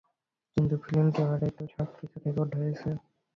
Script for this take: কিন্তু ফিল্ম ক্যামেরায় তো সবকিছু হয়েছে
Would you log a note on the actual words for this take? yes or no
yes